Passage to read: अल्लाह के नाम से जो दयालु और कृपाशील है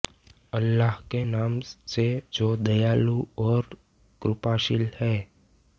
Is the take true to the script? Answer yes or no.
yes